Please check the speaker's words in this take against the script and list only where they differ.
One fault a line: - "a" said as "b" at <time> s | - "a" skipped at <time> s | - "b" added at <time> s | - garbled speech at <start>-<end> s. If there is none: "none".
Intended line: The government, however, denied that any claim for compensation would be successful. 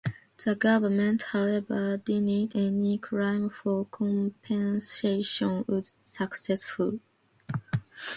- "that" skipped at 2.5 s
- "be" skipped at 5.9 s